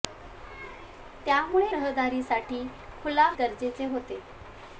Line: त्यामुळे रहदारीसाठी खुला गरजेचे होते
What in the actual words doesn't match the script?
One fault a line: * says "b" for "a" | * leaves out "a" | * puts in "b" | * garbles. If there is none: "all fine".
all fine